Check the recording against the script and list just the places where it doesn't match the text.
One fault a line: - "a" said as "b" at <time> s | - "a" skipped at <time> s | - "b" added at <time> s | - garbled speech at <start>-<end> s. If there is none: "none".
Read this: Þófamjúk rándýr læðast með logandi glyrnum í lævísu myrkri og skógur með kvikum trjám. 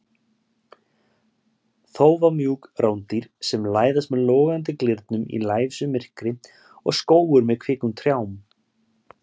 - "sem" added at 3.5 s